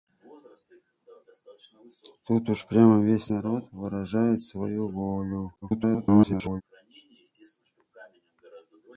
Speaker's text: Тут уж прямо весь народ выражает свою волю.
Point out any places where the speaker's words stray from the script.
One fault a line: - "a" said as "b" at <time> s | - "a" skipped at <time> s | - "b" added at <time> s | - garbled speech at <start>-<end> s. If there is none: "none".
- garbled speech at 5.6-6.6 s